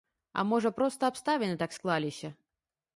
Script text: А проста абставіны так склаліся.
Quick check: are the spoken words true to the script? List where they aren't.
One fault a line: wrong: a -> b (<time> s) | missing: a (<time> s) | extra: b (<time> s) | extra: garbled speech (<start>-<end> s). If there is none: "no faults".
extra: можа (0.5 s)